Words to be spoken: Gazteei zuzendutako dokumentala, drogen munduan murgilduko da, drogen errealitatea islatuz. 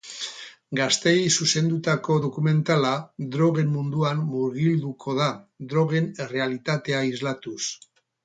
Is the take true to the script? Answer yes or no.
yes